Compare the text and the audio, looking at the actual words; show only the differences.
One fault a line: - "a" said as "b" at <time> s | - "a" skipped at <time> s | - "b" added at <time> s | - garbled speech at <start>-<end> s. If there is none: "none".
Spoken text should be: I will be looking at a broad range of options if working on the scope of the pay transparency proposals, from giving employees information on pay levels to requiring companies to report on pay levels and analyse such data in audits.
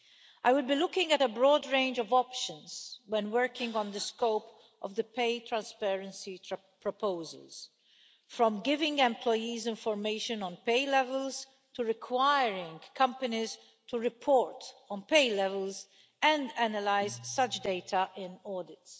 - "if" said as "when" at 3.1 s